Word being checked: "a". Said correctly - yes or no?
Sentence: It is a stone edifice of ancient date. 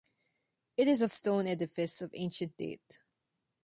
yes